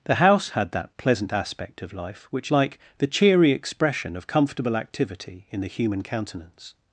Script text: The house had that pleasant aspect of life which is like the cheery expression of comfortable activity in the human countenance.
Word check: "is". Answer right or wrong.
wrong